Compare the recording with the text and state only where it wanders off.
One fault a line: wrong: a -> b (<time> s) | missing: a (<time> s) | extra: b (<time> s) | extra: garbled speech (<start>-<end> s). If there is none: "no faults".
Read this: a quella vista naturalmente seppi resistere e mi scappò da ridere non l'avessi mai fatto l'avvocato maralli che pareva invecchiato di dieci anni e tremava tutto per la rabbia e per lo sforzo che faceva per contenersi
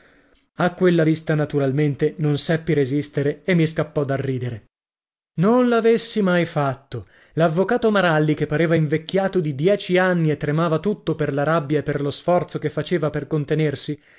extra: non (2.2 s)